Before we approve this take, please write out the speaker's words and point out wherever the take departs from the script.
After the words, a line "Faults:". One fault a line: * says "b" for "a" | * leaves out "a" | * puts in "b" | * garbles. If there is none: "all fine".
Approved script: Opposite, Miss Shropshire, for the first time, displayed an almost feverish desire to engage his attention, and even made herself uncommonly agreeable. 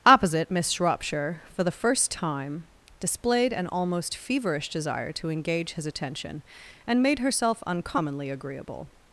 Opposite, Miss Shropshire, for the first time, displayed an almost feverish desire to engage his attention, and made herself uncommonly agreeable.
Faults:
* leaves out "even"